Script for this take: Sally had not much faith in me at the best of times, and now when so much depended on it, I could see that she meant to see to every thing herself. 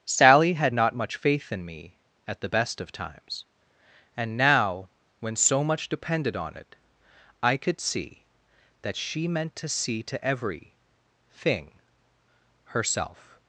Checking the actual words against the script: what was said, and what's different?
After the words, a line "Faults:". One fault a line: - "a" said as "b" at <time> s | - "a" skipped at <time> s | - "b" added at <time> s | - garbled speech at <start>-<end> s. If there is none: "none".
Sally had not much faith in me at the best of times, and now when so much depended on it, I could see that she meant to see to every thing herself.
Faults:
none